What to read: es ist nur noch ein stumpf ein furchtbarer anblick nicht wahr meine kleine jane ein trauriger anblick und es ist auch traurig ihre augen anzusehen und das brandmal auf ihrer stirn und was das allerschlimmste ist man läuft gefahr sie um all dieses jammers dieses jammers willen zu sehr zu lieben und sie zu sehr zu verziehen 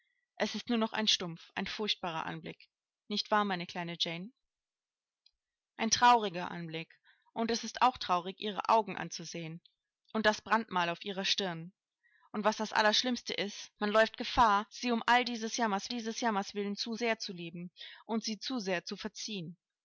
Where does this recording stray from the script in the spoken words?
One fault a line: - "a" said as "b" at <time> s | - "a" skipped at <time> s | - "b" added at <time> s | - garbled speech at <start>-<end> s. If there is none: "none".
none